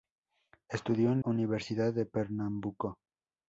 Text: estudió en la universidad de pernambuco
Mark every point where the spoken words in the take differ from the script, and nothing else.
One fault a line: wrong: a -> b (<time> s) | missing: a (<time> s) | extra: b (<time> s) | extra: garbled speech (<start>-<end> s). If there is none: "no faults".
missing: la (1.2 s)